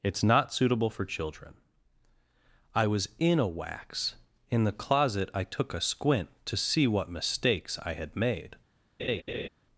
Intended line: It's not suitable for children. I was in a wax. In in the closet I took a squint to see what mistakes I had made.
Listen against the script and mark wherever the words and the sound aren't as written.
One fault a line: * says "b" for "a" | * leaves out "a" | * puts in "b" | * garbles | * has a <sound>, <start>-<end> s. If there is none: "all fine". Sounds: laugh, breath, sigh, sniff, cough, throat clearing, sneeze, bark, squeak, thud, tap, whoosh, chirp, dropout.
* leaves out "in"
* has a laugh, 9.0-9.5 s